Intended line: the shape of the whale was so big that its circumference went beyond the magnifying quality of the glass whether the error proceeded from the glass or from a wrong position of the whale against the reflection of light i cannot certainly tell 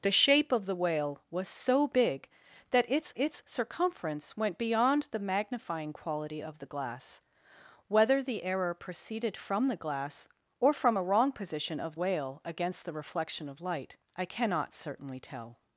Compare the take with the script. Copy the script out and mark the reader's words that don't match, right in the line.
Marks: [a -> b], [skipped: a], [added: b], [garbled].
the shape of the whale was so big that its [added: its] circumference went beyond the magnifying quality of the glass whether the error proceeded from the glass or from a wrong position of [skipped: the] whale against the reflection of light i cannot certainly tell